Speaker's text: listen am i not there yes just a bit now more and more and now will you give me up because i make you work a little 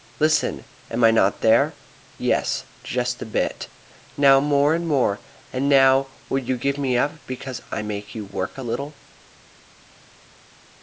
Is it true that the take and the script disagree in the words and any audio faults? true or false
false